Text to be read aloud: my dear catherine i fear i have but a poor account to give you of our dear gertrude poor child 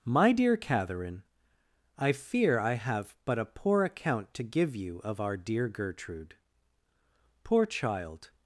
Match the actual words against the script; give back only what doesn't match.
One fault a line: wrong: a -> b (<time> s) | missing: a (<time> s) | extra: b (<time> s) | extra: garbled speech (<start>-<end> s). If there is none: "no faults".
no faults